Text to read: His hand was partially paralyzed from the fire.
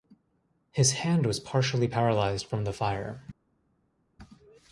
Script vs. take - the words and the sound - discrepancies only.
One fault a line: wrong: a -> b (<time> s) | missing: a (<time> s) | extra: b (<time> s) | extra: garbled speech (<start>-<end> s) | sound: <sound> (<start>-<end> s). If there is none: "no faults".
no faults